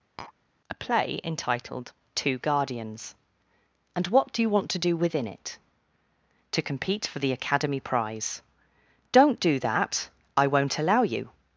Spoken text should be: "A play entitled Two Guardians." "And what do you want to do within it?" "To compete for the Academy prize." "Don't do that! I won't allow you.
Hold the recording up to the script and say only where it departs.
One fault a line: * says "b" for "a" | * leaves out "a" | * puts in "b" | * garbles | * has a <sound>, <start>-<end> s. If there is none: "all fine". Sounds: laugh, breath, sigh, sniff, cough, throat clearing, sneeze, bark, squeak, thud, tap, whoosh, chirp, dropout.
* has a tap, 0.2-0.3 s